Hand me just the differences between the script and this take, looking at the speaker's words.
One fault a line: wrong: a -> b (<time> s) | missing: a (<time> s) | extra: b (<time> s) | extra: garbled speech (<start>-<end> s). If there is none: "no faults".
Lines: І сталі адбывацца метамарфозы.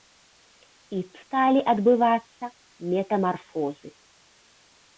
no faults